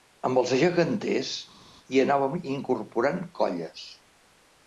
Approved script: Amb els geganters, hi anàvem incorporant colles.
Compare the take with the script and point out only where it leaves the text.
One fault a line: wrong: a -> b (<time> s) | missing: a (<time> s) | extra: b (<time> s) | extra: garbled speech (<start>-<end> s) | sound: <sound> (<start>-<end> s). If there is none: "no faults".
no faults